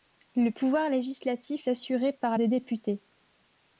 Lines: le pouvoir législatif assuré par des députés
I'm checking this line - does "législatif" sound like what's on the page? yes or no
yes